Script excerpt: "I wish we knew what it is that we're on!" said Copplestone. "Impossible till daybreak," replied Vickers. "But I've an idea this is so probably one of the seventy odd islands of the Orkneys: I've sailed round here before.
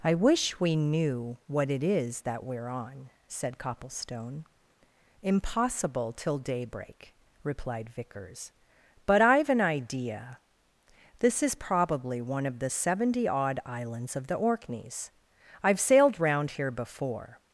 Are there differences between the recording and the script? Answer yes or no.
yes